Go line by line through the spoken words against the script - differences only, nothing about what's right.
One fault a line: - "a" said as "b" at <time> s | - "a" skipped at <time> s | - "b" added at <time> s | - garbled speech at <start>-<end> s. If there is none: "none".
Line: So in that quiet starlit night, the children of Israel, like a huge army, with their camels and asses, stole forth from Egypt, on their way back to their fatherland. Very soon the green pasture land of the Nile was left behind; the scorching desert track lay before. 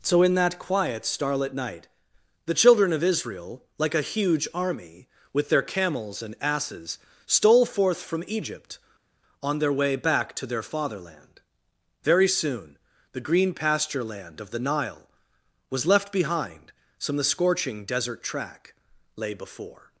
- "some" added at 17.0 s